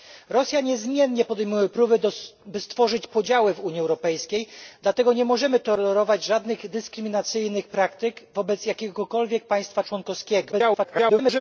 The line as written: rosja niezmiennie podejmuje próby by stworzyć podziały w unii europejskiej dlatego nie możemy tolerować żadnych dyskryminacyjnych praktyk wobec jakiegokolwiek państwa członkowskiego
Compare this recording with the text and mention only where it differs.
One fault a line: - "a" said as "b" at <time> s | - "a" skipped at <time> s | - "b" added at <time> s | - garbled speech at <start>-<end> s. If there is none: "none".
- garbled speech at 10.5-11.4 s